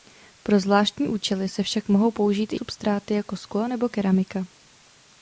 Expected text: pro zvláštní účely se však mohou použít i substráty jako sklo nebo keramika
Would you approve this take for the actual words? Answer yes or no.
yes